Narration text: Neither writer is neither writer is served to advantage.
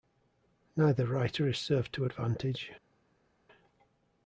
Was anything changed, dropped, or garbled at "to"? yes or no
no